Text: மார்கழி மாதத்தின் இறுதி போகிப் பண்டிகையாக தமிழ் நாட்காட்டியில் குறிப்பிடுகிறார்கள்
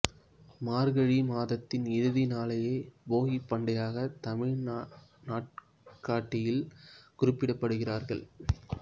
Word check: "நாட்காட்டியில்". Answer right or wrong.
right